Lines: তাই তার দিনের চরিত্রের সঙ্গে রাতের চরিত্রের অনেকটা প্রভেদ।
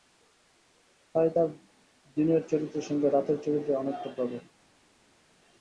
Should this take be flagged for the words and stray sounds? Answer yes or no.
no